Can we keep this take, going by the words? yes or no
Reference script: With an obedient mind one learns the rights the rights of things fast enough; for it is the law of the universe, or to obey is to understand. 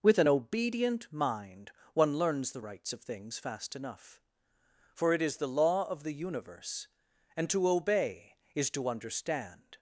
no